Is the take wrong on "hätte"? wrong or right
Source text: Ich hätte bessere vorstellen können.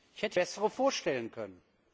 right